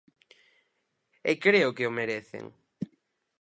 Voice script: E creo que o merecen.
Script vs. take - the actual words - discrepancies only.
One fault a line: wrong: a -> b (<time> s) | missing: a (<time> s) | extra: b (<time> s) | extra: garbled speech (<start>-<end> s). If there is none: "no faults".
no faults